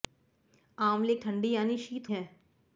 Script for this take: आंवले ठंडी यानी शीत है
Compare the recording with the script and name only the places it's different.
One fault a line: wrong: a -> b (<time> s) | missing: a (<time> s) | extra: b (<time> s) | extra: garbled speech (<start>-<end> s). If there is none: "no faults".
no faults